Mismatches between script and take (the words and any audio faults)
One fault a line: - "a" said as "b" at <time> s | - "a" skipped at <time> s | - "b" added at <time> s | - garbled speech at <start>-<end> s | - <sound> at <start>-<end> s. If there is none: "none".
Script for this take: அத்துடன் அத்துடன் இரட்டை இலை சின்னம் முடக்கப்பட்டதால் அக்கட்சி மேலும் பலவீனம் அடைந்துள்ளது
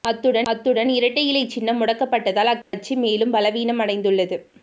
- dropout at 2.6-2.7 s